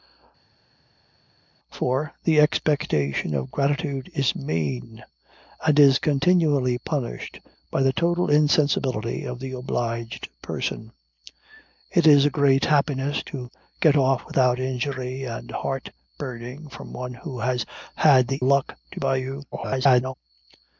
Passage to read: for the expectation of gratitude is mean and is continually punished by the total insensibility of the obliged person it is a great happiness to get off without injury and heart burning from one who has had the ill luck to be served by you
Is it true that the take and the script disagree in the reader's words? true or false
true